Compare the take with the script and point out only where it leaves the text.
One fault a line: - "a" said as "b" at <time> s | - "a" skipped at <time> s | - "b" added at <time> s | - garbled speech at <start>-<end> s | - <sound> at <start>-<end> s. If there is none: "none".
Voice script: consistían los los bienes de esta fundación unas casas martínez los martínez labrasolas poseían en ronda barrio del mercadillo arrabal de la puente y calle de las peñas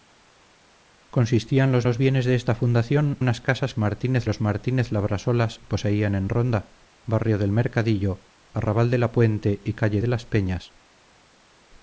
none